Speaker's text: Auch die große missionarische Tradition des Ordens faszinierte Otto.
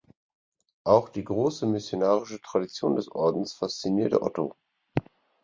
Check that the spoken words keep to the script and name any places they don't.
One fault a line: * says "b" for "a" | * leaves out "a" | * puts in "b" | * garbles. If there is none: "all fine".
all fine